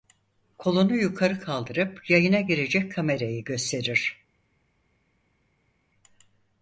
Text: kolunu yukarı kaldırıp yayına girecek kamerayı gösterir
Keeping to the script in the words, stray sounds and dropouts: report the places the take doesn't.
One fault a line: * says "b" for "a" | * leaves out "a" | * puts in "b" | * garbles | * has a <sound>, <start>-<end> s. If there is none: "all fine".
all fine